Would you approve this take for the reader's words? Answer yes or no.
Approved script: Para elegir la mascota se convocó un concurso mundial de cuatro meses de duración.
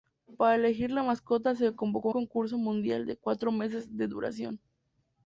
no